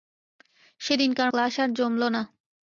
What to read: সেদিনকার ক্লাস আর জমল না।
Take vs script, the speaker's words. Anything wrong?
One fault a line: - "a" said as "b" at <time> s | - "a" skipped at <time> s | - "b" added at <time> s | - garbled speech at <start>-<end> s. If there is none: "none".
none